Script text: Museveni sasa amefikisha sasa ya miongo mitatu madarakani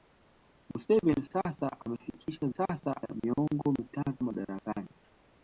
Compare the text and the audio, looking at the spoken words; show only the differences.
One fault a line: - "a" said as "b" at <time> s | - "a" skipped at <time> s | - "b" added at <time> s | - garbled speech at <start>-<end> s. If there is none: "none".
none